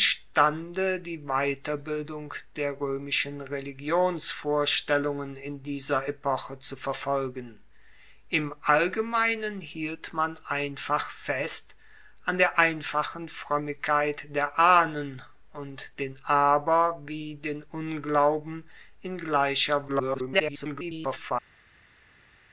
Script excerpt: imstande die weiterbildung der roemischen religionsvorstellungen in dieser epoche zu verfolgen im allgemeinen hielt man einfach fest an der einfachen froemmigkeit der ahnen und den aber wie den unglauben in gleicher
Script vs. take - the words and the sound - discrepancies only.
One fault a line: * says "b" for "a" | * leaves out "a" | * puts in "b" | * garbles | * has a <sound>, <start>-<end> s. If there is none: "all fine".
* garbles